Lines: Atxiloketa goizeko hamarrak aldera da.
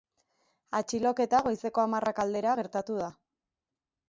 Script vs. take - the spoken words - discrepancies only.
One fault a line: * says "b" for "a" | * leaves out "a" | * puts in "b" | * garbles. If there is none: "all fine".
* puts in "gertatu"